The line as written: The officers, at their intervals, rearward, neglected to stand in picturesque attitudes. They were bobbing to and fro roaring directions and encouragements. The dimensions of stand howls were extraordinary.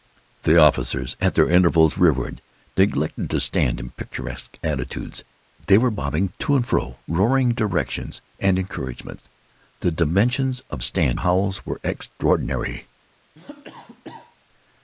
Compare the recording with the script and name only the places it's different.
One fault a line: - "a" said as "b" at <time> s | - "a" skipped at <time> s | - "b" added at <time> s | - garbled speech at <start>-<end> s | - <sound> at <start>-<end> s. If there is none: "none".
- cough at 13.4-14.4 s